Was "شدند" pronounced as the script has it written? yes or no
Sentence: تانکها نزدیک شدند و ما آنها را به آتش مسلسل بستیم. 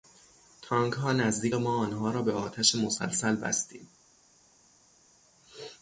no